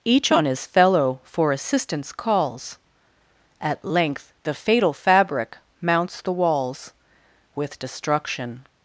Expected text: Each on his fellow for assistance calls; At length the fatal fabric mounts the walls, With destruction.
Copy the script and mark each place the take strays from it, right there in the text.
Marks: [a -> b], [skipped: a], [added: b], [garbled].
Each on his fellow for assistance calls; At length the fatal fabric mounts the walls, With destruction.